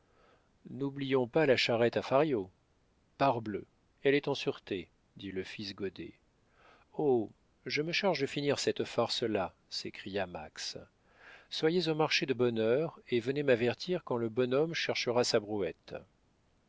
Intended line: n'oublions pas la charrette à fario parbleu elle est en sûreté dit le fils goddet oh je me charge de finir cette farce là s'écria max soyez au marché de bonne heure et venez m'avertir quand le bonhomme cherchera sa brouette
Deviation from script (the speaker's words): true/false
false